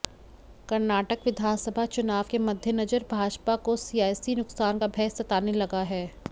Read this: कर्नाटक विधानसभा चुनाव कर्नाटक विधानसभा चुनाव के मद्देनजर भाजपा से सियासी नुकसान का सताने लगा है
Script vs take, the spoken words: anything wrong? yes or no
yes